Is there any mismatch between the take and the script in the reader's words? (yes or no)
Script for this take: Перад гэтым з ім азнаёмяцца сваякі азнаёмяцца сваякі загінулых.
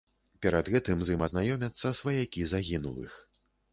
yes